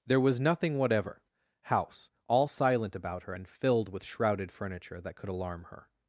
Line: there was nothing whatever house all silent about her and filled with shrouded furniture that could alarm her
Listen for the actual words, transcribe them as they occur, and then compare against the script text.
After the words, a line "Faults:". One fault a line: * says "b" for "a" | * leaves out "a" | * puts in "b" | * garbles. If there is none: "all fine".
there was nothing whatever house all silent about her and filled with shrouded furniture that could alarm her
Faults:
all fine